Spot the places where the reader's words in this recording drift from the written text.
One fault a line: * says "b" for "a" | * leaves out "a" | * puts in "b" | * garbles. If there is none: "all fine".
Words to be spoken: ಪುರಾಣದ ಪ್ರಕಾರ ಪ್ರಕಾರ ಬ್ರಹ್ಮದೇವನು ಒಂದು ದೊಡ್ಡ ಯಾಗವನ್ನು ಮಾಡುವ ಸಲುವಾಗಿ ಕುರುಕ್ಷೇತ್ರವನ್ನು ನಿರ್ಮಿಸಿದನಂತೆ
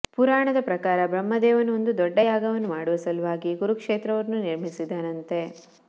* leaves out "ಪ್ರಕಾರ"